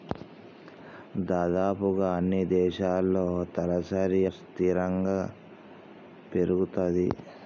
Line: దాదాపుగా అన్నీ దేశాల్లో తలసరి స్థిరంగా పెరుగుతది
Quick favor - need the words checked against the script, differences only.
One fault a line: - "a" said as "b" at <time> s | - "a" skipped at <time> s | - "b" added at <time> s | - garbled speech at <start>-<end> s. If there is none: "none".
none